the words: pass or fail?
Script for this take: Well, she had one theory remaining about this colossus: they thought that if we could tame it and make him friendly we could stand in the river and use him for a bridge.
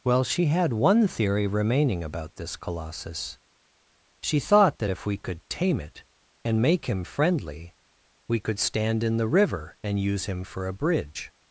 fail